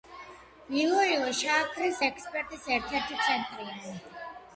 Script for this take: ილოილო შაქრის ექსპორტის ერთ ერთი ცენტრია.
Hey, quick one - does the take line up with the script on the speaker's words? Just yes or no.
yes